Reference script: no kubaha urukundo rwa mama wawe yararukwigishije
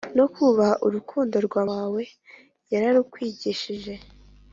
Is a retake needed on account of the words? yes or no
yes